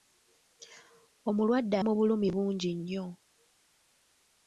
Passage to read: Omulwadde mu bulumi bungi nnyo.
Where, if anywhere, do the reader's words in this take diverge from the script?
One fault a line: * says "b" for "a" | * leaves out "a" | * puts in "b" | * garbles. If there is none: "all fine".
all fine